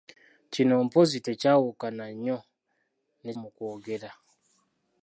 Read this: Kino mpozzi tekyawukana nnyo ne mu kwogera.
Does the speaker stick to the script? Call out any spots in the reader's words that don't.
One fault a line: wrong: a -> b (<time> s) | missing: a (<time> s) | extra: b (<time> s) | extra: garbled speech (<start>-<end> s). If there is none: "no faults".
no faults